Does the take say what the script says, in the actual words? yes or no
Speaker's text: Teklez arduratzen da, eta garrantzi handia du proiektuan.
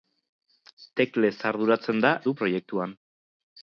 no